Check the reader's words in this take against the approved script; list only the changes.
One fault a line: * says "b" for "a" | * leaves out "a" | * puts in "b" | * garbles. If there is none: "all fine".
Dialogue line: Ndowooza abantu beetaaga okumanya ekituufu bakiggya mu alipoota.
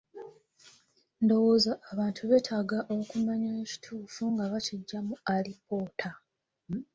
* puts in "nga"